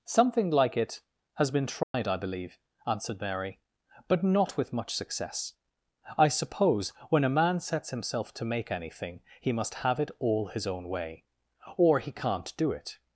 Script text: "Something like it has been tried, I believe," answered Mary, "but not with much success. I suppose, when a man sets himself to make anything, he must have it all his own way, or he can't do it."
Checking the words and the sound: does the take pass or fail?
fail